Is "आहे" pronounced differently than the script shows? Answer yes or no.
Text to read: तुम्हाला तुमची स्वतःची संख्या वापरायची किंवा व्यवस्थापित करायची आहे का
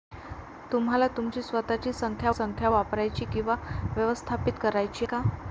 yes